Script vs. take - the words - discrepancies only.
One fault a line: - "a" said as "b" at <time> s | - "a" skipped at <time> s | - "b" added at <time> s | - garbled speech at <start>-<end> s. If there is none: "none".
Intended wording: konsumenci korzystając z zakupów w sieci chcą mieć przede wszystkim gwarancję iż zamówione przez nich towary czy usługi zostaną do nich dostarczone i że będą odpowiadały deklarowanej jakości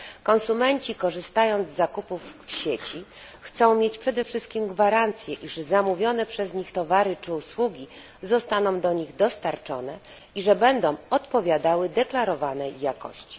none